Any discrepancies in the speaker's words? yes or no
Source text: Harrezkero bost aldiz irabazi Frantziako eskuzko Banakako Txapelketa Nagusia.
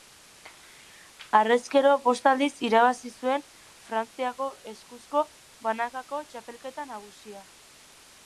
yes